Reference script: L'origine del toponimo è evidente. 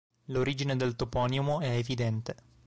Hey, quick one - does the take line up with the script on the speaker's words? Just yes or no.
yes